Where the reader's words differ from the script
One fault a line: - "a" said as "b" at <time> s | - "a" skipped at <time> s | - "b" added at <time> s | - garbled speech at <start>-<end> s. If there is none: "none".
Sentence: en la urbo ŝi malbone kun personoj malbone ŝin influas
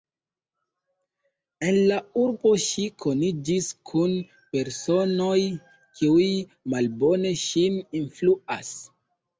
- "malbone" said as "koniĝis" at 3.0 s
- "kiuj" added at 6.0 s